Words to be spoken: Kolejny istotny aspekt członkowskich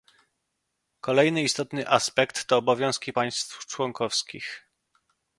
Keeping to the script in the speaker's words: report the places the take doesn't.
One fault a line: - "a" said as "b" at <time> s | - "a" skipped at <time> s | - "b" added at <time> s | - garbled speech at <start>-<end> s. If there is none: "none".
- "to obowiązki państw" added at 2.4 s